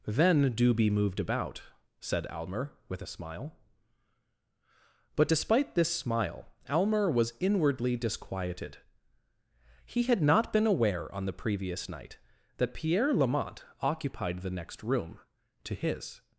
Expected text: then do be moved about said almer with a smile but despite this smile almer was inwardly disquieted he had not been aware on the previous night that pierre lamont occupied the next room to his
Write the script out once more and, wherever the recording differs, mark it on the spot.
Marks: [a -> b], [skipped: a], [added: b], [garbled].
then do be moved about said almer with a smile but despite this smile almer was inwardly disquieted he had not been aware on the previous night that pierre lamont occupied the next room to his